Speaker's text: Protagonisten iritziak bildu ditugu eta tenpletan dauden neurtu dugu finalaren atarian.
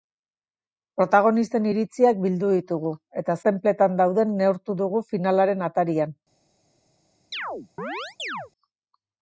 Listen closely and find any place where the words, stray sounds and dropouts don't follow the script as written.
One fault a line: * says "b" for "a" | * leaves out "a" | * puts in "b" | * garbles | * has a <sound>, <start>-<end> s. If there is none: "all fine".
* has a chirp, 7.3-8.5 s